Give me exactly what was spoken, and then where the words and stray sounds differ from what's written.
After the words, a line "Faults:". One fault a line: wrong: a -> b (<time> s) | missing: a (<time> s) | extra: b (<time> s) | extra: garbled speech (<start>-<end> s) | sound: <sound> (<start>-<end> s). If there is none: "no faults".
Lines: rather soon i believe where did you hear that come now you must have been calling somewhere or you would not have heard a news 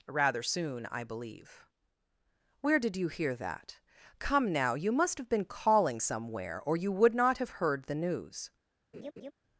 rather soon i believe where did you hear that come now you must have been calling somewhere or you would not have heard the news
Faults:
wrong: a -> the (7.8 s)
sound: laugh (8.9-9.3 s)